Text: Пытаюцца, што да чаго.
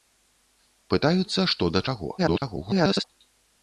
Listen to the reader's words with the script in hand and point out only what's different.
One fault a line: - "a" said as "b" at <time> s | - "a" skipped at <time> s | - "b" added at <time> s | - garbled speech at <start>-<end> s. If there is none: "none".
- garbled speech at 2.2-3.0 s